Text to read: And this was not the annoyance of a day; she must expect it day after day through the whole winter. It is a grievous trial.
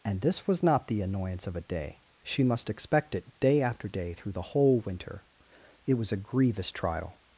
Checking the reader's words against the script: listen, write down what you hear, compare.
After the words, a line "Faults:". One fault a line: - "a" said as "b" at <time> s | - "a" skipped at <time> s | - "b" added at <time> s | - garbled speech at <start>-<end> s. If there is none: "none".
And this was not the annoyance of a day; she must expect it day after day through the whole winter. It was a grievous trial.
Faults:
- "is" said as "was" at 5.9 s